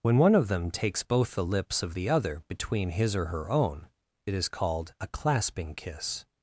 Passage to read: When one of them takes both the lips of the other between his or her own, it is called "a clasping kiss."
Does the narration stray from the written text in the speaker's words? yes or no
no